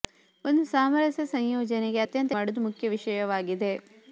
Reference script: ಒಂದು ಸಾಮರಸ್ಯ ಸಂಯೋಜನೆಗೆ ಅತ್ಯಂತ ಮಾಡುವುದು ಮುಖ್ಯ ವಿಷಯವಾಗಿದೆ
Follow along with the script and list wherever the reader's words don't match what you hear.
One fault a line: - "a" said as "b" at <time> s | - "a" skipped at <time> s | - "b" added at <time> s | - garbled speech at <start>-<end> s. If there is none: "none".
none